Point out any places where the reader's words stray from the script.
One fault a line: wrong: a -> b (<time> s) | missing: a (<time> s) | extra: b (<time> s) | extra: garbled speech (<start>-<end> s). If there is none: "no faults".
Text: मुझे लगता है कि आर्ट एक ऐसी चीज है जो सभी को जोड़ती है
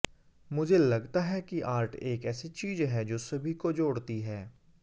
no faults